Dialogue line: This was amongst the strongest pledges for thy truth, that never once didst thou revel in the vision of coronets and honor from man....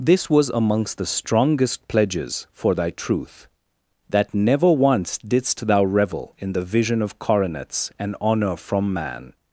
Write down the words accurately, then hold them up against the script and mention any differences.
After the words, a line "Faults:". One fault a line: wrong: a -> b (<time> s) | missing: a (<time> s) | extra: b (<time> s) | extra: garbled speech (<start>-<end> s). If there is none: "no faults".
This was amongst the strongest pledges for thy truth, that never once didst thou revel in the vision of coronets and honor from man....
Faults:
no faults